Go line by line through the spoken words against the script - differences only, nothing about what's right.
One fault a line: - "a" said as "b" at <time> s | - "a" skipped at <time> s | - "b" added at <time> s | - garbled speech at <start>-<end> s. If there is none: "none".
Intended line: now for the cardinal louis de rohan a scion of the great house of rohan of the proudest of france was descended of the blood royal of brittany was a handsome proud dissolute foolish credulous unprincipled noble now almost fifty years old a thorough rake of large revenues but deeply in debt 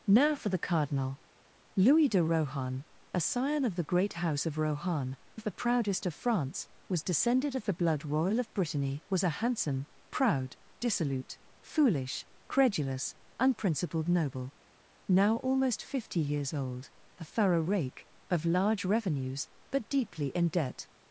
none